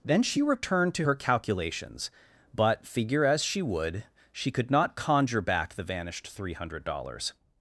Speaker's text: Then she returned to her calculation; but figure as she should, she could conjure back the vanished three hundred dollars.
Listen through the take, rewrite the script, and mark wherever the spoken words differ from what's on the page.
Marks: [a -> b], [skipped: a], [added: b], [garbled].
Then she returned to her [calculation; -> calculations] but figure as she [should, -> would] she could [added: not] conjure back the vanished three hundred dollars.